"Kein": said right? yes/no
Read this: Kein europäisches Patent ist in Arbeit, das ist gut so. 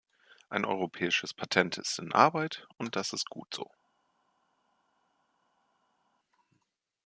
no